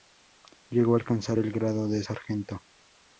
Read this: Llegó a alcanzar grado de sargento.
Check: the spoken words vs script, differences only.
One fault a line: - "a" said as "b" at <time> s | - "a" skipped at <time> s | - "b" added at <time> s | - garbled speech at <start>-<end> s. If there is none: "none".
- "el" added at 1.4 s